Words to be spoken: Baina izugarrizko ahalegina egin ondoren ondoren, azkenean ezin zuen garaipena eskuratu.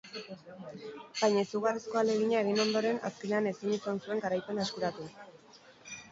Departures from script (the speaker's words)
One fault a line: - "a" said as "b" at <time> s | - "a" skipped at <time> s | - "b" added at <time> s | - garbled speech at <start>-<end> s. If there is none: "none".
- "ondoren" skipped at 3.0 s
- "izan" added at 3.8 s